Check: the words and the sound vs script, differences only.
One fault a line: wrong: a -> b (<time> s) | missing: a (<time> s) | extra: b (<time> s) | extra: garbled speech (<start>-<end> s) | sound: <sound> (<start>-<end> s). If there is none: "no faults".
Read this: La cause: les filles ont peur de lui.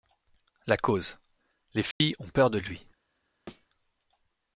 sound: dropout (1.9-2.0 s)
sound: thud (3.5-3.7 s)